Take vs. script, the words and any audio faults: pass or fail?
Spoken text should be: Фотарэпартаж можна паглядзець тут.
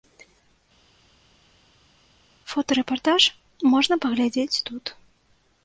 pass